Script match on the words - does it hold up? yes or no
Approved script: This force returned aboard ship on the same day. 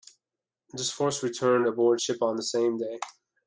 yes